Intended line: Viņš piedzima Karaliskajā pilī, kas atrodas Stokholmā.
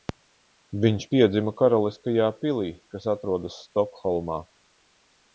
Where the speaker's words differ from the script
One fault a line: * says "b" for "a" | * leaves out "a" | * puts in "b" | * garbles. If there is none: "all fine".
all fine